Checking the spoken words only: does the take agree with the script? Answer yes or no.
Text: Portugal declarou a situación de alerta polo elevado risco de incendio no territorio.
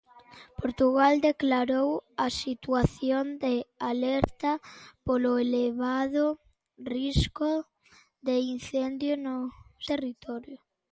yes